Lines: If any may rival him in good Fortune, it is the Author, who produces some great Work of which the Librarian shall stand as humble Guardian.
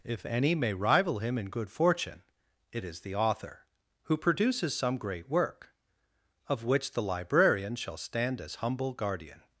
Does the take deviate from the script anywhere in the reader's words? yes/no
no